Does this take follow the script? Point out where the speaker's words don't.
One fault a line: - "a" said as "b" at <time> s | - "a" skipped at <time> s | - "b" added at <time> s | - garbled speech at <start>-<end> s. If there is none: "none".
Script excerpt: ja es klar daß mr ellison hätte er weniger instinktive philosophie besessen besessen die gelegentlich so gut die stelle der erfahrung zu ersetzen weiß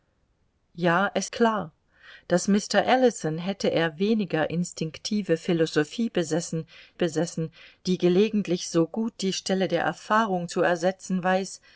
none